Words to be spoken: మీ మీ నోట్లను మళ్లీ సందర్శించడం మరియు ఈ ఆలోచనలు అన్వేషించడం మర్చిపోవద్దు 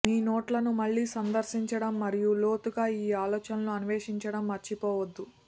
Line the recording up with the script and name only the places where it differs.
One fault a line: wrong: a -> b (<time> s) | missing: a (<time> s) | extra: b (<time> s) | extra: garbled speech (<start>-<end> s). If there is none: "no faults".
missing: మీ (0.1 s)
extra: లోతుగా (2.4 s)